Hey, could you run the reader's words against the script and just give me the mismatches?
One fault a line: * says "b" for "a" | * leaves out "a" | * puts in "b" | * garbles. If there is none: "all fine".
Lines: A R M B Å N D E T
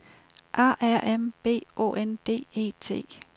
all fine